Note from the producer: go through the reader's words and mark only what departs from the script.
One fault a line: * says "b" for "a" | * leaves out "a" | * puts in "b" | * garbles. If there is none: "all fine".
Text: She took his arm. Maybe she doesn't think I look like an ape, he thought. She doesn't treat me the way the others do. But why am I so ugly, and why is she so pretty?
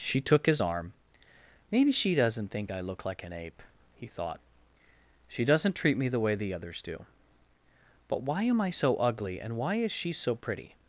all fine